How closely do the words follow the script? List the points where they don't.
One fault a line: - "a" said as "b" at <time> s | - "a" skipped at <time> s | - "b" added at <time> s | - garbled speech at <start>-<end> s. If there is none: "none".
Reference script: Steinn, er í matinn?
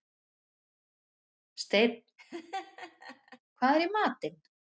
- "hvað" added at 3.6 s